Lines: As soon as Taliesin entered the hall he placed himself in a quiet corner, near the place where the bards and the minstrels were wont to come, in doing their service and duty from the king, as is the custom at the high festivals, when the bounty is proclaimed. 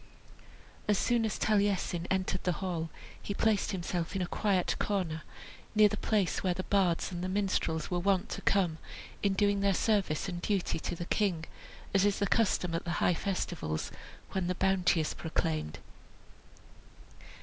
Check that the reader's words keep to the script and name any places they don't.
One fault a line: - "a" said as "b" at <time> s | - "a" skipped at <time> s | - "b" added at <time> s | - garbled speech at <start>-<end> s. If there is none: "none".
- "from" said as "to" at 10.8 s